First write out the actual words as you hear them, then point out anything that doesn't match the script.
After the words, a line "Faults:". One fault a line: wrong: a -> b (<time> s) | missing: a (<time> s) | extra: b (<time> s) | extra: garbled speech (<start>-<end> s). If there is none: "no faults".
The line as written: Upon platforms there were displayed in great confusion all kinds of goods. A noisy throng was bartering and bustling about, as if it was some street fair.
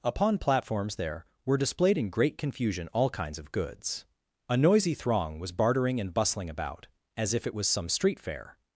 Upon platforms there were displayed in great confusion all kinds of goods. A noisy throng was bartering and bustling about, as if it was some street fair.
Faults:
no faults